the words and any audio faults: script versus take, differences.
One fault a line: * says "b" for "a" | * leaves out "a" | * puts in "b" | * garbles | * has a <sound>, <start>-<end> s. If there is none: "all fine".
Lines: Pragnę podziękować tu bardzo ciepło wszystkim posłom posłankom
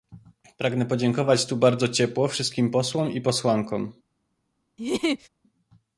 * puts in "i"
* has a laugh, 4.8-5.3 s